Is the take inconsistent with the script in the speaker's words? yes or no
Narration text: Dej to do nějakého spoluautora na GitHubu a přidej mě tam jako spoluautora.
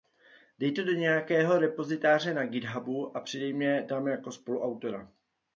yes